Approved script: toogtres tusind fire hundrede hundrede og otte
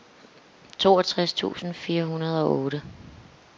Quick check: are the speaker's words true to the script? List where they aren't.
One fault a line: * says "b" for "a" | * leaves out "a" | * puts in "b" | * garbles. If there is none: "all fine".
* leaves out "hundrede"